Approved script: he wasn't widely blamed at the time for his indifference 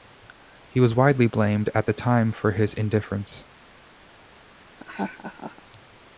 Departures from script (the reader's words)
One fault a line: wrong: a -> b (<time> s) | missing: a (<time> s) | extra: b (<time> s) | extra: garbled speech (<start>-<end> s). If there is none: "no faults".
wrong: wasn't -> was (0.8 s)